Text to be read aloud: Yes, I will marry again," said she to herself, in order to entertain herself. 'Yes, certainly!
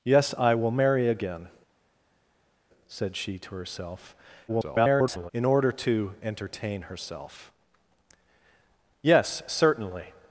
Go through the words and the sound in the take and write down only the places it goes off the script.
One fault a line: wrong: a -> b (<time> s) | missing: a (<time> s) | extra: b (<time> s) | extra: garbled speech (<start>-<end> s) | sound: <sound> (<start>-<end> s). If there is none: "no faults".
extra: garbled speech (4.5-5.3 s)